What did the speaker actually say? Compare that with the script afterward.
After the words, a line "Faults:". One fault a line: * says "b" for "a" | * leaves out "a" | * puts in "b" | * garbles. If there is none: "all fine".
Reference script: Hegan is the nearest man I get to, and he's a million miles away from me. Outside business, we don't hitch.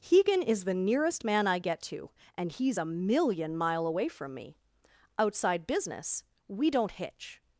Hegan is the nearest man I get to, and he's a million mile away from me. Outside business, we don't hitch.
Faults:
* says "mile" for "miles"